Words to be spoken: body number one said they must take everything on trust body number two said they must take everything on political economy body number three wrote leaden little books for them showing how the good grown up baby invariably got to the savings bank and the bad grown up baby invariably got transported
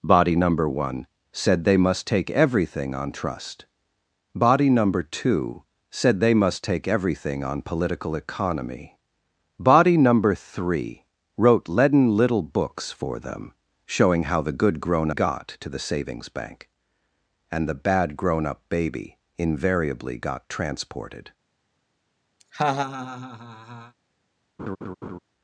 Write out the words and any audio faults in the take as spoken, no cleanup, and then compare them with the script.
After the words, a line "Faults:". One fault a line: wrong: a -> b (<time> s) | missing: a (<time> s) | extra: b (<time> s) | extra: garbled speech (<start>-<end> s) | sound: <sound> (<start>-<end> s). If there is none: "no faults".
body number one said they must take everything on trust body number two said they must take everything on political economy body number three wrote leaden little books for them showing how the good grown got to the savings bank and the bad grown up baby invariably got transported
Faults:
missing: up baby invariably (15.1 s)
sound: laugh (22.4-23.9 s)
sound: laugh (24.6-25.2 s)